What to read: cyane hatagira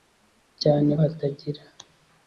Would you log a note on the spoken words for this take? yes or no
no